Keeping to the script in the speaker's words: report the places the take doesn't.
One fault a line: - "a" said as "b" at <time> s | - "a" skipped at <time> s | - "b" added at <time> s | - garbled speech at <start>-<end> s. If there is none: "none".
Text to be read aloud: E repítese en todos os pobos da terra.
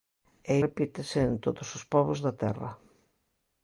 none